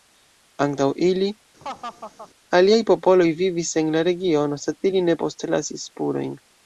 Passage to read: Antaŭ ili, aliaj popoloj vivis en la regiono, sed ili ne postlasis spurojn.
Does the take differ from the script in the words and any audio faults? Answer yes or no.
yes